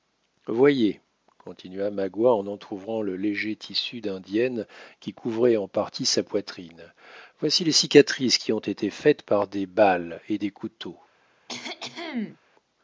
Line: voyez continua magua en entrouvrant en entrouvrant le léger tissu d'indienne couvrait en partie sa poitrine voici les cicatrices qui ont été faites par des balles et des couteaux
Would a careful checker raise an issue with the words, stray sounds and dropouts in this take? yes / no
yes